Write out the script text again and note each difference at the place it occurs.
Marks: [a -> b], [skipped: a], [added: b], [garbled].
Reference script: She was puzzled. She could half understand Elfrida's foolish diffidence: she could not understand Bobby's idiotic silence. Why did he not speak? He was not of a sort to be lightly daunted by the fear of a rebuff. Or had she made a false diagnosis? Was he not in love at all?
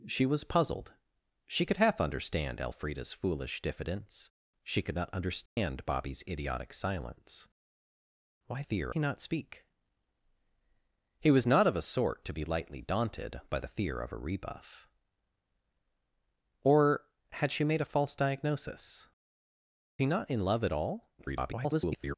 She was puzzled. She could half understand Elfrida's foolish diffidence: she could not understand Bobby's idiotic silence. Why [did -> fear] he not speak? He was not of a sort to be lightly daunted by the fear of a rebuff. Or had she made a false diagnosis? [skipped: Was] he not in love at all? [garbled]